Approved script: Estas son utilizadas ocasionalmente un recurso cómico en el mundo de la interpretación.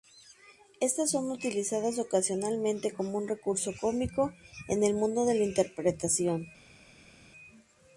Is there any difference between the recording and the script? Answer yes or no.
yes